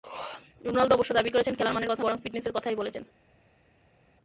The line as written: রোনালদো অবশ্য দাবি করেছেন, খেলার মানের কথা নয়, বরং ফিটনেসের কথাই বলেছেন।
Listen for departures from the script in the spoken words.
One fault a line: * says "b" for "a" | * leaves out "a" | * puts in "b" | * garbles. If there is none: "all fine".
* leaves out "নয়"